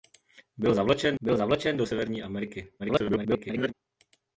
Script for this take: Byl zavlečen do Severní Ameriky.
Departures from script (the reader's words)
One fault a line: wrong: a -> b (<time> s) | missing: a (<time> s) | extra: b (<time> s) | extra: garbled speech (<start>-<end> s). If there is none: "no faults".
extra: byl zavlečen (1.2 s)
extra: garbled speech (2.8-3.7 s)